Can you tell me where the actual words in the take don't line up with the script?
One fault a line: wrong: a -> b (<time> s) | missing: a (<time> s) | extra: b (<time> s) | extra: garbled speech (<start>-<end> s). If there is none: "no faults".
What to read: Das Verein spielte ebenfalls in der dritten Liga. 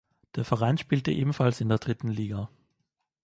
wrong: Das -> Der (0.3 s)